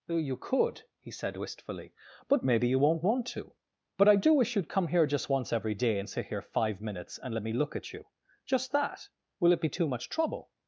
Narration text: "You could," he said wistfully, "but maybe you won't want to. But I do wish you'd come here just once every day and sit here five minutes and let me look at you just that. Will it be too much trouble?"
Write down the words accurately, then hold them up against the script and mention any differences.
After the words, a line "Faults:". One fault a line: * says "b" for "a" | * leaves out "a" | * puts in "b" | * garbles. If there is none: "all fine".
"You could," he said wistfully, "but maybe you won't want to. But I do wish you'd come here just once every day and sit here five minutes and let me look at you just that. Will it be too much trouble?"
Faults:
all fine